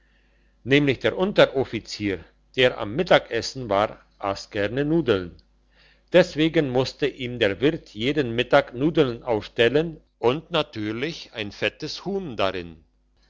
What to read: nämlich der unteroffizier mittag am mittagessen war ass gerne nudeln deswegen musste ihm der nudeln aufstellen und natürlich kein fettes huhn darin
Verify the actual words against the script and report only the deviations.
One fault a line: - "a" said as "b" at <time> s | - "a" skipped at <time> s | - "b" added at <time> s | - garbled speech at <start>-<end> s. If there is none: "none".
- "mittag" said as "der" at 2.5 s
- "wirt jeden mittag" added at 7.6 s
- "kein" said as "ein" at 11.3 s